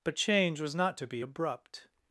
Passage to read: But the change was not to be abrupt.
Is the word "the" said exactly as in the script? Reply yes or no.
no